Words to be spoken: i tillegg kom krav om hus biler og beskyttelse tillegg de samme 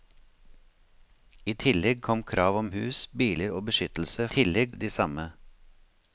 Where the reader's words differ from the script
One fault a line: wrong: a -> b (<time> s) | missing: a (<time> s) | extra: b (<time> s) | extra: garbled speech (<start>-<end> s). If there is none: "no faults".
no faults